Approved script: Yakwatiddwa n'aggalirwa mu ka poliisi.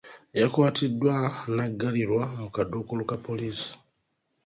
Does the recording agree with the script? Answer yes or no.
no